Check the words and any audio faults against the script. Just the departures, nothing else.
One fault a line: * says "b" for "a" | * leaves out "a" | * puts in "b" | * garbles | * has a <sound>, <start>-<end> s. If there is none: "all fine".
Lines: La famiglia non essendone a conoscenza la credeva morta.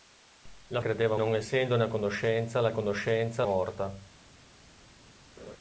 * says "credeva" for "famiglia"
* says "conoscenza" for "credeva"
* has a laugh, 5.4-5.6 s